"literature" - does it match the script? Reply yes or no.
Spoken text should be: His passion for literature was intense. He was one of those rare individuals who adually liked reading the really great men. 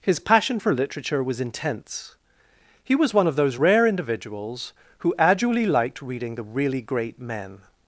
yes